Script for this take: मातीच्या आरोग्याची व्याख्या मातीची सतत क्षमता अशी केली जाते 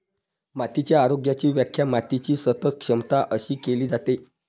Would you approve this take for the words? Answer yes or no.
yes